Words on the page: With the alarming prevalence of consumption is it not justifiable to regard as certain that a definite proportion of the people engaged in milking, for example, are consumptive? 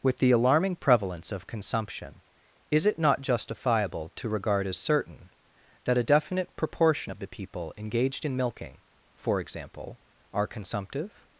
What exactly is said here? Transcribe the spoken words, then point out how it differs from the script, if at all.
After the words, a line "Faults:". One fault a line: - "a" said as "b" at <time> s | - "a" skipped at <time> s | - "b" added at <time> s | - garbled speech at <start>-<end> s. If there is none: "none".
With the alarming prevalence of consumption is it not justifiable to regard as certain that a definite proportion of the people engaged in milking, for example, are consumptive?
Faults:
none